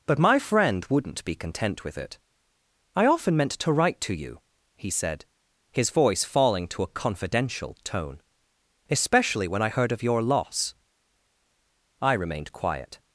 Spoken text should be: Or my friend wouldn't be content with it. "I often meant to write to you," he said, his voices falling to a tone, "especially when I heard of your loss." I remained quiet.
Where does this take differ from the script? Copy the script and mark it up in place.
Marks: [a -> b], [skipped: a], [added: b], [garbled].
[Or -> But] my friend wouldn't be content with it. "I often meant to write to you," he said, his [voices -> voice] falling to a [added: confidential] tone, "especially when I heard of your loss." I remained quiet.